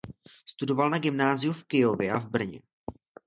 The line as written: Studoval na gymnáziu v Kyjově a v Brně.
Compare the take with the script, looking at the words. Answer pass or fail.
pass